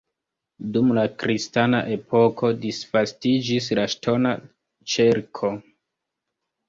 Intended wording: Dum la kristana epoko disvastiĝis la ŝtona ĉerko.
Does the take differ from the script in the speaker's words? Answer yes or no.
no